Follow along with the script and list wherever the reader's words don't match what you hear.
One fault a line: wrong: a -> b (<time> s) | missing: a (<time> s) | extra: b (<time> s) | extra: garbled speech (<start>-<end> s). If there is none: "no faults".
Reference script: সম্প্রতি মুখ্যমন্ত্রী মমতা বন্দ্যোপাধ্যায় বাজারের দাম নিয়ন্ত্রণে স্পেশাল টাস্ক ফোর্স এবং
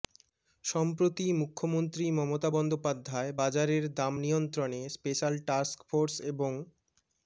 no faults